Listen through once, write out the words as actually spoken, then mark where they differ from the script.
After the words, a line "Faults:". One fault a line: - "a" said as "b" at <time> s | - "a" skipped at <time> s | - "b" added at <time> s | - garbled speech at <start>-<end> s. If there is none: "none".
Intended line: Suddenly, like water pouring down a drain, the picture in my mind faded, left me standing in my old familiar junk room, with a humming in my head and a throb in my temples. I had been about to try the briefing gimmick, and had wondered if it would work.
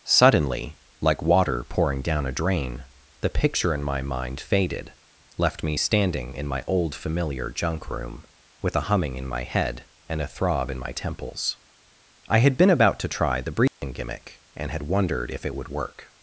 Suddenly, like water pouring down a drain, the picture in my mind faded, left me standing in my old familiar junk room, with a humming in my head and a throb in my temples. I had been about to try the briefing gimmick, and had wondered if it would work.
Faults:
none